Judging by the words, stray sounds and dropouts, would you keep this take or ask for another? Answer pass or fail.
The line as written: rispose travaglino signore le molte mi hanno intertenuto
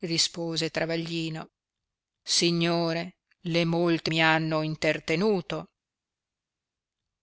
pass